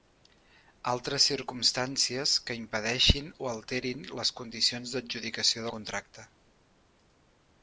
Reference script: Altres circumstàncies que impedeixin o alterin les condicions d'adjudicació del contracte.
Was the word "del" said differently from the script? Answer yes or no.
yes